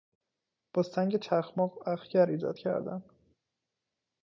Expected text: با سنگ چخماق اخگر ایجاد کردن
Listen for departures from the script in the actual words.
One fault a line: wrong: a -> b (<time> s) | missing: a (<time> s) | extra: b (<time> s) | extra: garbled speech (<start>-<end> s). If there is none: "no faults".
no faults